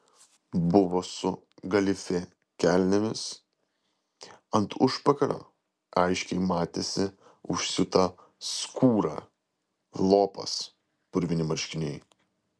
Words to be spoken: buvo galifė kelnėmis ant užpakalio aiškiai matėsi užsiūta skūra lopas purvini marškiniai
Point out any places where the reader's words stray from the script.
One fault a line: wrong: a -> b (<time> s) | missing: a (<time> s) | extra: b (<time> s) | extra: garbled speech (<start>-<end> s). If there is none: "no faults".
extra: su (1.1 s)